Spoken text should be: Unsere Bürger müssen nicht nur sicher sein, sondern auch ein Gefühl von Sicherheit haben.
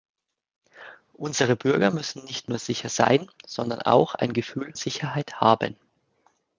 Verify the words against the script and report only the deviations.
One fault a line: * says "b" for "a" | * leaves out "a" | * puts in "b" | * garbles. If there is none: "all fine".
* leaves out "von"